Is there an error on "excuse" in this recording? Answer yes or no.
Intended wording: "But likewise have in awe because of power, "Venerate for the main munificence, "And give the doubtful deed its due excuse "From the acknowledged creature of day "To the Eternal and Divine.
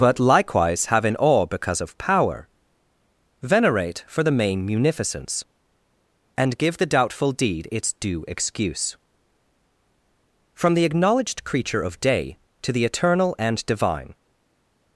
no